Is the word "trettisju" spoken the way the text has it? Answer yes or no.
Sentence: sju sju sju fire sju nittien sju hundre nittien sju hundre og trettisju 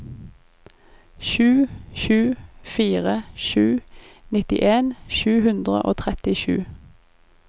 yes